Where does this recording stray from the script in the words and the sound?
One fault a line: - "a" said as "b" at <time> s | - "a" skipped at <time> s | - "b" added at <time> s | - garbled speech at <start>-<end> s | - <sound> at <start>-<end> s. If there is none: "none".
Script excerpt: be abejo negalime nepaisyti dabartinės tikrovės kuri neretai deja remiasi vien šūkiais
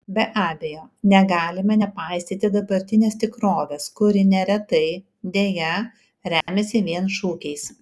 - dropout at 6.4-6.5 s